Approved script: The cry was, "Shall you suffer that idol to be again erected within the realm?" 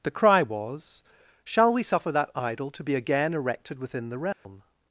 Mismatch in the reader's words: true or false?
true